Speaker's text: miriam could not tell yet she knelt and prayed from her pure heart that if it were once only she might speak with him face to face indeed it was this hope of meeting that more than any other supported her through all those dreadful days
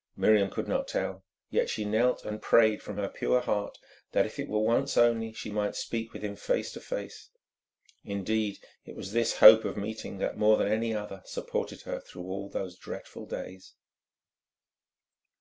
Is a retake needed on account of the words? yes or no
no